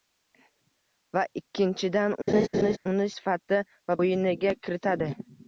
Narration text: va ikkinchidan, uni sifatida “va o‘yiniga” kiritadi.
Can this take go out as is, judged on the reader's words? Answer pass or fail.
pass